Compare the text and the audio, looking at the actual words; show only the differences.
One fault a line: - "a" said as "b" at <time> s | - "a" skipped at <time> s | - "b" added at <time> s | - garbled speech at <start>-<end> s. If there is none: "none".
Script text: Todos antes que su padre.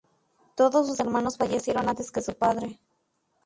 - "sus hermanos fallecieron" added at 0.9 s